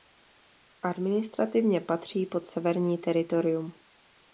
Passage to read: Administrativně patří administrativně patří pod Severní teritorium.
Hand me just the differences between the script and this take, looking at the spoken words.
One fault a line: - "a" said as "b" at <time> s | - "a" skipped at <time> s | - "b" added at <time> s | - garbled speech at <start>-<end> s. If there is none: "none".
- "administrativně patří" skipped at 2.2 s